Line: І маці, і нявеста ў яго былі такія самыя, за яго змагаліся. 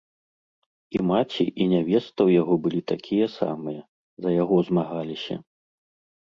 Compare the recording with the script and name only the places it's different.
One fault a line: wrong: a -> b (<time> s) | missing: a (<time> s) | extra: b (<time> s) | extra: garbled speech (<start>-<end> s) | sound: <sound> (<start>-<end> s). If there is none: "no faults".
no faults